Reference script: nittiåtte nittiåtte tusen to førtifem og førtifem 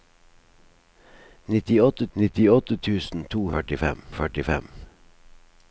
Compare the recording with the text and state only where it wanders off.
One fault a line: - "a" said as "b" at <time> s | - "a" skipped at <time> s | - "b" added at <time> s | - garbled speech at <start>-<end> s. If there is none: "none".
none